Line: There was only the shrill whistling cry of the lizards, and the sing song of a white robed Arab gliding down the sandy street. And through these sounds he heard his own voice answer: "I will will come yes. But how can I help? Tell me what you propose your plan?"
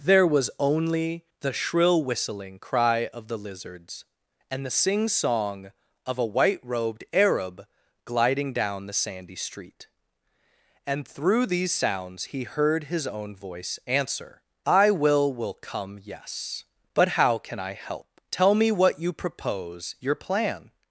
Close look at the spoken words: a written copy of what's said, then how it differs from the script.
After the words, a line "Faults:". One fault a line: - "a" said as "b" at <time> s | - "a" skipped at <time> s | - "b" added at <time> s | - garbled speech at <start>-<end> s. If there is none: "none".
There was only the shrill whistling cry of the lizards, and the sing song of a white robed Arab gliding down the sandy street. And through these sounds he heard his own voice answer: "I will will come yes. But how can I help? Tell me what you propose your plan?"
Faults:
none